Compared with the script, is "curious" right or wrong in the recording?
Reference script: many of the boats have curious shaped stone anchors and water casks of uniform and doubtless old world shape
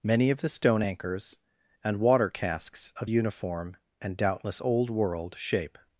wrong